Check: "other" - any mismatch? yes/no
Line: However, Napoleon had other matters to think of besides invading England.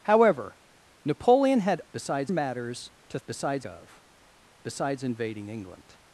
yes